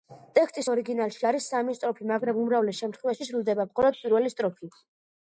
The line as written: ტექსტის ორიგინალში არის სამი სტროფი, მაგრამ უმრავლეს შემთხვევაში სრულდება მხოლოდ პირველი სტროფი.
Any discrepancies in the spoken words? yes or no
no